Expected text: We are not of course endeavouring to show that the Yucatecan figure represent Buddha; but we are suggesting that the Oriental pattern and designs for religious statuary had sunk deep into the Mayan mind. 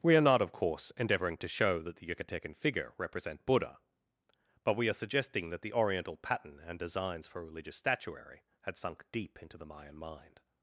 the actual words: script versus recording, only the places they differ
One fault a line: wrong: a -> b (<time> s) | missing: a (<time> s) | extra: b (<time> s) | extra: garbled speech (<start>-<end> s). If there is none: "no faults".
no faults